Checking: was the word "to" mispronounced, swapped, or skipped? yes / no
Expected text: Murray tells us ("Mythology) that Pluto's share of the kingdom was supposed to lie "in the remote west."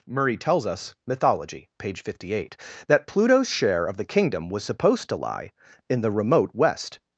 no